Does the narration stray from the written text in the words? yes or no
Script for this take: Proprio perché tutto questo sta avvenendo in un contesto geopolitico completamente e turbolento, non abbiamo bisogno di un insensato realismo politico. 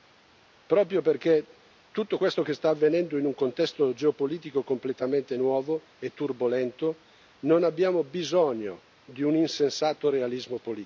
yes